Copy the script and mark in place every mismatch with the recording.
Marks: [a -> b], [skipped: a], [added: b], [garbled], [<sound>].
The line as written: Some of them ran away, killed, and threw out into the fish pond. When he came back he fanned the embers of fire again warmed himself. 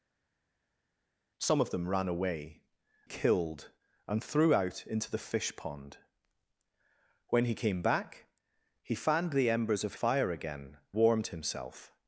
Some of them ran away, killed, and threw out into the fish pond. When he came back he fanned the embers of fire again warmed himself.